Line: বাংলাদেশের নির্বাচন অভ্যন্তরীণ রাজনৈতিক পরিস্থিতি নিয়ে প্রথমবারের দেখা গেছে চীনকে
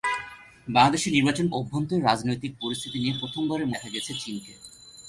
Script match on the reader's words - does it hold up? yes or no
yes